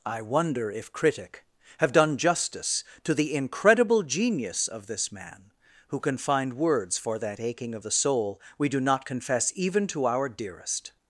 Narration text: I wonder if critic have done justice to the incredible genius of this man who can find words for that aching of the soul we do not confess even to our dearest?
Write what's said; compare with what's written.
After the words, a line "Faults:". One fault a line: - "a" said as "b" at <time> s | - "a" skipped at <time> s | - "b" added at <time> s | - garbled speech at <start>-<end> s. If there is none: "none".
I wonder if critic have done justice to the incredible genius of this man who can find words for that aching of the soul we do not confess even to our dearest?
Faults:
none